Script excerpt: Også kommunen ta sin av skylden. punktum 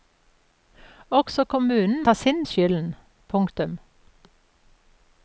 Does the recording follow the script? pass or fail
pass